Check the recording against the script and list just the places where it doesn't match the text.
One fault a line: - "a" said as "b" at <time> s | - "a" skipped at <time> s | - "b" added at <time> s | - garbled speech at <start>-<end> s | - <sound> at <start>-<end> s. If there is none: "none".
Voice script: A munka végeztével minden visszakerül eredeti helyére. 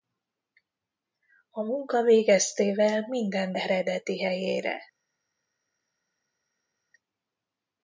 - "visszakerül" skipped at 3.5 s